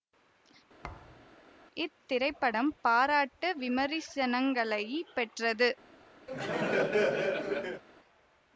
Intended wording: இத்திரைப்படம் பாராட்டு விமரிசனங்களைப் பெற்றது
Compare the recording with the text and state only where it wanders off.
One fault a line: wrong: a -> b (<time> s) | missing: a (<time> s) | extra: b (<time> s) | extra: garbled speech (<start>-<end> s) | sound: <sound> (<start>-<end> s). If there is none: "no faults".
sound: thud (0.8-1.3 s)
sound: laugh (6.3-7.8 s)